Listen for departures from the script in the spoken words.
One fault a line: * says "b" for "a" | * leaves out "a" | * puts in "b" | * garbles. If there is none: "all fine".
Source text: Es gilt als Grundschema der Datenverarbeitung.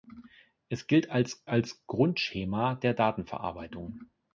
* puts in "als"